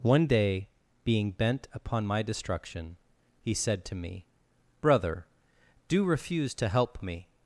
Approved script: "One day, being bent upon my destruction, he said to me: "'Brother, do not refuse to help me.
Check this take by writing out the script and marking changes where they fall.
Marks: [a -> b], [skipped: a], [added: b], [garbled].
"One day, being bent upon my destruction, he said to me: "'Brother, do [skipped: not] refuse to help me.